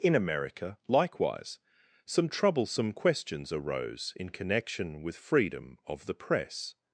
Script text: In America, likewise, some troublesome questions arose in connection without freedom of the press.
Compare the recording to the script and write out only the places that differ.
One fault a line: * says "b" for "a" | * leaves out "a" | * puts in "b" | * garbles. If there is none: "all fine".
* says "with" for "without"